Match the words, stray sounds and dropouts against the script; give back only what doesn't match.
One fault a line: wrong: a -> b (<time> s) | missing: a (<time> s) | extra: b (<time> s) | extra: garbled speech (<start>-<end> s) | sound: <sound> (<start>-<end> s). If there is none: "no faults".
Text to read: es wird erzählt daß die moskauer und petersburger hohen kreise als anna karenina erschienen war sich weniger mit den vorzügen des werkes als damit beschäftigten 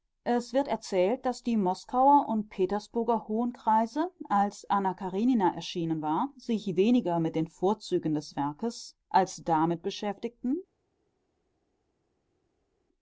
no faults